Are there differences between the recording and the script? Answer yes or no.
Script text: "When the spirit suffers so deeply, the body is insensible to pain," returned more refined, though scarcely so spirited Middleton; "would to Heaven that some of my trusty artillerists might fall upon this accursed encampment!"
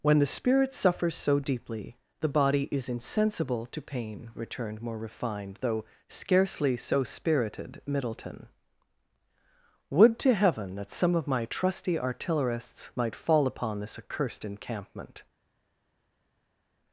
no